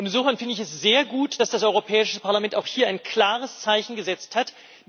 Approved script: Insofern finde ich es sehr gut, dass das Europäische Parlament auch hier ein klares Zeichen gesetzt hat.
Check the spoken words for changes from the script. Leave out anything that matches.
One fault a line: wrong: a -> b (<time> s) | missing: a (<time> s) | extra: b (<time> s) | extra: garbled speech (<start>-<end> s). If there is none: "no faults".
no faults